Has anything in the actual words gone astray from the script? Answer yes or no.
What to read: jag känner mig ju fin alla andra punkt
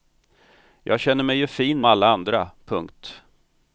no